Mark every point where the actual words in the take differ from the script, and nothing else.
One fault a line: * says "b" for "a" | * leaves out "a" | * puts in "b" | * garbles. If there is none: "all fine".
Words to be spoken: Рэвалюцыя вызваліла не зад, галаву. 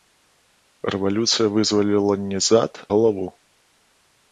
all fine